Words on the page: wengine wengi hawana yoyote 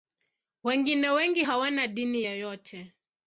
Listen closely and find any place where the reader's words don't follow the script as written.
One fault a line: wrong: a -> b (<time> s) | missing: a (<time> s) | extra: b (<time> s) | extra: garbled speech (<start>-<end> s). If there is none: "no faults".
extra: dini (1.9 s)